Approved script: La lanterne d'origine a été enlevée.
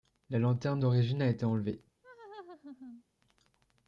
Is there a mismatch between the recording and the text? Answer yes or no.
no